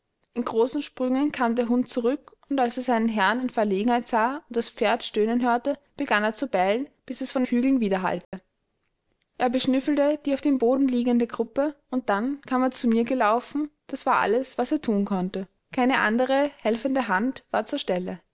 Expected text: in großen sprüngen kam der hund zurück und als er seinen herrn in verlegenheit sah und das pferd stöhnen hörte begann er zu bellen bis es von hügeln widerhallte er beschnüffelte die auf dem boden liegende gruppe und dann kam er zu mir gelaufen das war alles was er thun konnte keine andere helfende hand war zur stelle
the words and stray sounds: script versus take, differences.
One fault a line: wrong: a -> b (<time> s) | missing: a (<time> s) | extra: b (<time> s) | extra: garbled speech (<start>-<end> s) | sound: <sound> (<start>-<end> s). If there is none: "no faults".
sound: dropout (8.2-8.3 s)